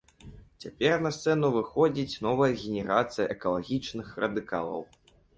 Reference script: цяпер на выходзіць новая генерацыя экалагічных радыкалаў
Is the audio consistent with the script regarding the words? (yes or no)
no